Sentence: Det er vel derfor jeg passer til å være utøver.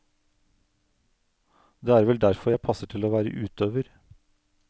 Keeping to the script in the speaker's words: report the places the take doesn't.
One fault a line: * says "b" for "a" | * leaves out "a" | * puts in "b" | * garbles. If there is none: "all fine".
all fine